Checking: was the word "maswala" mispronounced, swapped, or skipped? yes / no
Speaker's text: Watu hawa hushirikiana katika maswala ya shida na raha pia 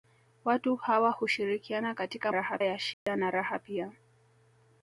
yes